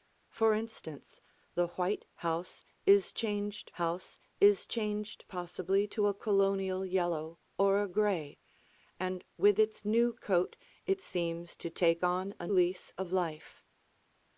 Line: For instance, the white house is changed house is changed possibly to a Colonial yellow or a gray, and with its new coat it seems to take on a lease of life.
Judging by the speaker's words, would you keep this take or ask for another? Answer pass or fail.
pass